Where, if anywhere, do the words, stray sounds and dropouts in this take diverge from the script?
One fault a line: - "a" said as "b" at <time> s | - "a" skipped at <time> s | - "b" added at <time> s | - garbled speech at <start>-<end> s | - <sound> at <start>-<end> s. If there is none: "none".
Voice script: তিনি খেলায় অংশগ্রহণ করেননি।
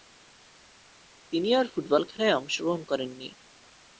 - "আর ফুটবল" added at 1.5 s